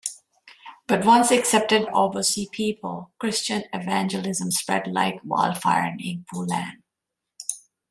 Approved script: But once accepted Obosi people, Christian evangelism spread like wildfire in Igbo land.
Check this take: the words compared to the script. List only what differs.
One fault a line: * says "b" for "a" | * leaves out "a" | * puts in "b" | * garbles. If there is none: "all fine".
all fine